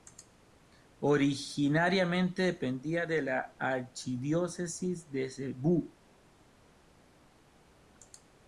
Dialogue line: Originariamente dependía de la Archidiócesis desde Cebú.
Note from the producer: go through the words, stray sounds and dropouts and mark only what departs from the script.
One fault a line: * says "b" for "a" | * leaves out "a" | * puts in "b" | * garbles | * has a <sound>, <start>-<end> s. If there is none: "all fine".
* says "de" for "desde"